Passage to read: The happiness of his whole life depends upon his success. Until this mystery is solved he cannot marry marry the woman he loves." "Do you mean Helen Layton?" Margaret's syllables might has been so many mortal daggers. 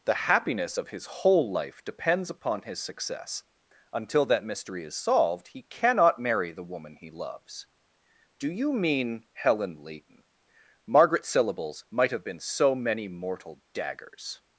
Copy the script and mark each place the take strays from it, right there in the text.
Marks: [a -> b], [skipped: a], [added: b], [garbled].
The happiness of his whole life depends upon his success. Until [this -> that] mystery is solved he cannot marry [skipped: marry] the woman he loves." "Do you mean Helen Layton?" Margaret's syllables might [has -> have] been so many mortal daggers.